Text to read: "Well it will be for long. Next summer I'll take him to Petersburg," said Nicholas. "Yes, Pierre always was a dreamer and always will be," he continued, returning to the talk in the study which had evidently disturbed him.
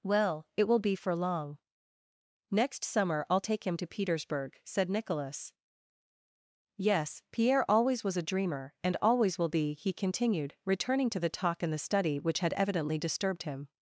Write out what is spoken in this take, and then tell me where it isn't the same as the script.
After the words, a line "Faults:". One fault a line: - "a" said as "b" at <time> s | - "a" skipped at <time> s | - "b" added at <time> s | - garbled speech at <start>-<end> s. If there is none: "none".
"Well it will be for long. Next summer I'll take him to Petersburg," said Nicholas. "Yes, Pierre always was a dreamer and always will be," he continued, returning to the talk in the study which had evidently disturbed him.
Faults:
none